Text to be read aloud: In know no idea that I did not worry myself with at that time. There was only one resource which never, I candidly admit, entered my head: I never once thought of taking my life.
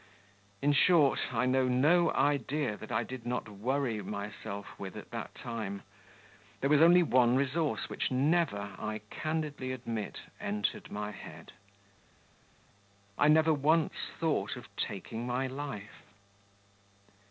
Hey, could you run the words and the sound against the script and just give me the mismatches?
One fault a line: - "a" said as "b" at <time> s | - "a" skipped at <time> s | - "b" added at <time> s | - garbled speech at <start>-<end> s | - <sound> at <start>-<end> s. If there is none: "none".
- "short I" added at 0.7 s